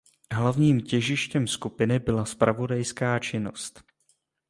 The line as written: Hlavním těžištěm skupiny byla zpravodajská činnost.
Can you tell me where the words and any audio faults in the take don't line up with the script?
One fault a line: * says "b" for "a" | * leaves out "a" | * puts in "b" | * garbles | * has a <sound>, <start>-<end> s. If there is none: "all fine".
all fine